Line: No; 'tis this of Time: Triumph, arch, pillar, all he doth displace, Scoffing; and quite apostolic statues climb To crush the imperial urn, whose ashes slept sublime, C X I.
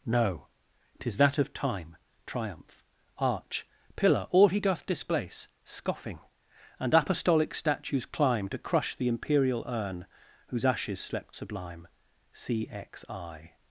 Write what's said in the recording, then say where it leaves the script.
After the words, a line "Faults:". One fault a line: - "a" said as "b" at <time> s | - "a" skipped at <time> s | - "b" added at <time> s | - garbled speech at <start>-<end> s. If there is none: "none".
No; 'tis that of Time: Triumph, arch, pillar, all he doth displace, Scoffing; and apostolic statues climb To crush the imperial urn, whose ashes slept sublime, C X I.
Faults:
- "this" said as "that" at 1.2 s
- "quite" skipped at 7.0 s